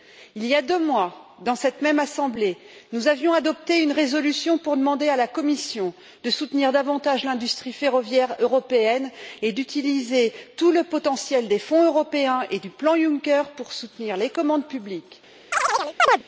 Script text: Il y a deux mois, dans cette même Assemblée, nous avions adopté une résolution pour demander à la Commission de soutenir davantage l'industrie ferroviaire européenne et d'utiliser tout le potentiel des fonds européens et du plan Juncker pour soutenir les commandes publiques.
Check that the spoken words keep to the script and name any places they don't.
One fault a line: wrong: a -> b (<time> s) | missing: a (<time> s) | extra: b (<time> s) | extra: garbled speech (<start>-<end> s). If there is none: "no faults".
no faults